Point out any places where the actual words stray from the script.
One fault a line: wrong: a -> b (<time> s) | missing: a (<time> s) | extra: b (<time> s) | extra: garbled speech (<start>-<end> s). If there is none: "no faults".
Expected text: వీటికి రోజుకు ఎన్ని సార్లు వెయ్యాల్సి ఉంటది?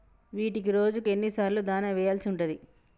extra: దాణా (1.6 s)